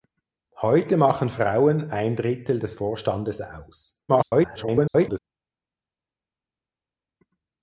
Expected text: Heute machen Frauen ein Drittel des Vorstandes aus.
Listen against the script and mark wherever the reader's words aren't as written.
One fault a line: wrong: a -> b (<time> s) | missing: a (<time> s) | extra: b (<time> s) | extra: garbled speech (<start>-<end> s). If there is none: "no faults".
extra: garbled speech (4.1-5.2 s)